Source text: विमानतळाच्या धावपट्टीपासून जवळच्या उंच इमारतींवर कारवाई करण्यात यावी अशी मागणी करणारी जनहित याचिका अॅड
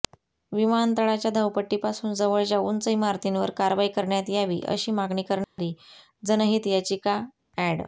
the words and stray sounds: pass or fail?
fail